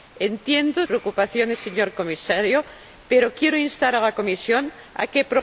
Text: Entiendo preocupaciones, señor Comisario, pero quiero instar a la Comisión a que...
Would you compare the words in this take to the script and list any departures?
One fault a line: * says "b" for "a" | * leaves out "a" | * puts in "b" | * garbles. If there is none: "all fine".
all fine